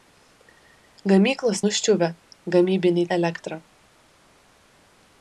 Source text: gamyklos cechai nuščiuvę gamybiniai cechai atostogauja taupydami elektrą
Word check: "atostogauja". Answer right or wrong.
wrong